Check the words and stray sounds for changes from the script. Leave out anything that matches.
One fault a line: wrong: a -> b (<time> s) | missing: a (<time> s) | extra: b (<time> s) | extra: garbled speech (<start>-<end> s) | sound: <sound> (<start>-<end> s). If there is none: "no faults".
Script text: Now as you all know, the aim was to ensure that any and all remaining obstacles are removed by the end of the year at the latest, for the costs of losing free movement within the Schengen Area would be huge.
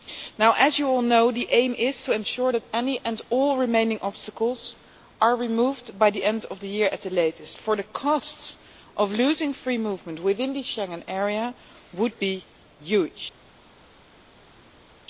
wrong: was -> is (1.8 s)